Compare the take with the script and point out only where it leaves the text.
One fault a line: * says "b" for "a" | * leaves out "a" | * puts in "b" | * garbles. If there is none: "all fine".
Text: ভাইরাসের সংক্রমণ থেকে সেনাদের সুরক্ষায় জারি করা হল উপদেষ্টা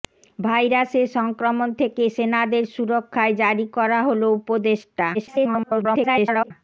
* garbles